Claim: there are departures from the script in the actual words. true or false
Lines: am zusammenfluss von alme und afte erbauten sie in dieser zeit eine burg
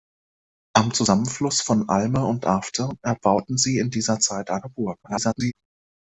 true